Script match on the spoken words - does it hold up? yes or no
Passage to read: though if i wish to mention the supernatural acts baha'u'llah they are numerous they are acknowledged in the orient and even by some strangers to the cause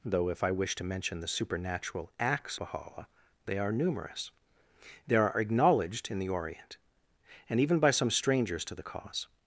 yes